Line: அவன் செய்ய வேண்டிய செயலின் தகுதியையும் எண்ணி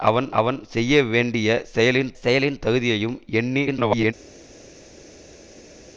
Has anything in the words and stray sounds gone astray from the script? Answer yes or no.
yes